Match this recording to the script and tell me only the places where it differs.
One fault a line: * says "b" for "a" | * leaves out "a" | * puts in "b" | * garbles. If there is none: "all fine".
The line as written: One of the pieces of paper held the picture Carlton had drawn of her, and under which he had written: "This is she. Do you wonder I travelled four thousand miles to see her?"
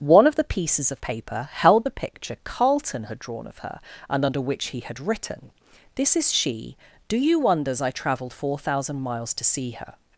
* says "wonders" for "wonder"